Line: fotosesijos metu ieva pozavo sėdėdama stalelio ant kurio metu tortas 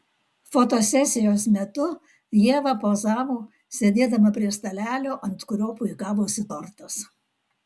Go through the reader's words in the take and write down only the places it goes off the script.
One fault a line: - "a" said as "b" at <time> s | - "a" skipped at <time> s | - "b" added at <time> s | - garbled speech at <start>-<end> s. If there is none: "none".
- "prie" added at 4.4 s
- "metu" said as "puikavosi" at 5.8 s